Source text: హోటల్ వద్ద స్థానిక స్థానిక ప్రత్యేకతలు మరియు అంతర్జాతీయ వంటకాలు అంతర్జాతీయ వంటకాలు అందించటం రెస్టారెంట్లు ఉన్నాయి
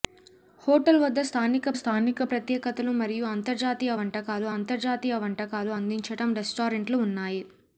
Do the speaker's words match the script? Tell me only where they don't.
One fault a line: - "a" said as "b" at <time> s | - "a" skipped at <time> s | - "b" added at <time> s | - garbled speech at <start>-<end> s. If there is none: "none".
none